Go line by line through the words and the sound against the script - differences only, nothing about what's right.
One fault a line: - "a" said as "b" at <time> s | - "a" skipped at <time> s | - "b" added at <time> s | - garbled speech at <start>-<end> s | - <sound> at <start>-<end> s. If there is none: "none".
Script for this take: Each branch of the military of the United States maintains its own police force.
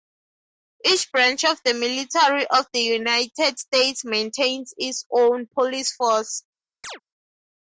- chirp at 6.8-7.0 s